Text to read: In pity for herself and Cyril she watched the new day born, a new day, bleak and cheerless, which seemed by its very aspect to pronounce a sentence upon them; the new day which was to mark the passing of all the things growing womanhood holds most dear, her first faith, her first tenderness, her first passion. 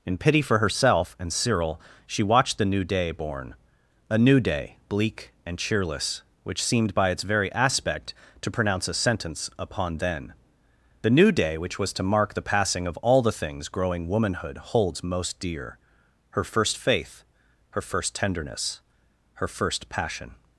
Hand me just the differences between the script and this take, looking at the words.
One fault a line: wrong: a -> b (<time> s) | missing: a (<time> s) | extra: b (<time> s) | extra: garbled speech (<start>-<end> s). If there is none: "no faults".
wrong: them -> then (10.0 s)